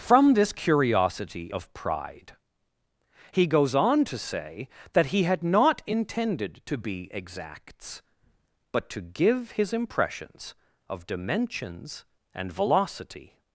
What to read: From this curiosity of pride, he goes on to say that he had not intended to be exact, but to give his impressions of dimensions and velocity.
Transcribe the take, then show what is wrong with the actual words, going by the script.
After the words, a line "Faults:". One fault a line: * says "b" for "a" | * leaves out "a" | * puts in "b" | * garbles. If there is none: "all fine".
From this curiosity of pride, he goes on to say that he had not intended to be exacts, but to give his impressions of dimensions and velocity.
Faults:
* says "exacts" for "exact"